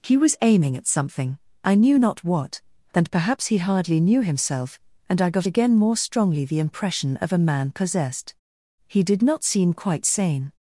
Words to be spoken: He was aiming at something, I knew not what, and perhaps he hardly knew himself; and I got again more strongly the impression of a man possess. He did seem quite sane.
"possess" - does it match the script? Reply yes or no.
no